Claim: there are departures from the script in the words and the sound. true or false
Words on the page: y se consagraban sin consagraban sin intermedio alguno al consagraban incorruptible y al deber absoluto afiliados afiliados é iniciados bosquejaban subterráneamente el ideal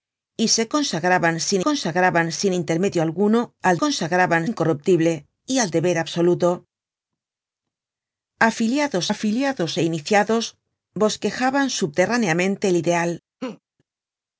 true